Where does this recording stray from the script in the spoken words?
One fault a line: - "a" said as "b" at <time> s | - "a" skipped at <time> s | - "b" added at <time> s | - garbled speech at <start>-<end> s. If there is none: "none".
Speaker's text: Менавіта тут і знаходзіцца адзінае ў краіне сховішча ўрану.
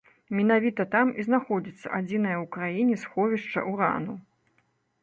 - "тут" said as "там" at 0.9 s